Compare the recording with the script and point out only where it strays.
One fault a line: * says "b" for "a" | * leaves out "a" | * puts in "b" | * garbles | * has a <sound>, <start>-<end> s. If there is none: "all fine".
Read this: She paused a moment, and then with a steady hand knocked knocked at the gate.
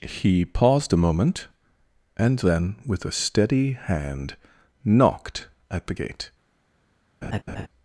* says "He" for "She"
* leaves out "knocked"
* has a laugh, 7.2-7.7 s